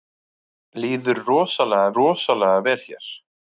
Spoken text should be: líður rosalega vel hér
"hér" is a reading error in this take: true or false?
false